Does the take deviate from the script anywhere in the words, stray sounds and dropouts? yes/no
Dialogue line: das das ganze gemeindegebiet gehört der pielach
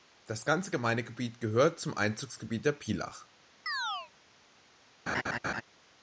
yes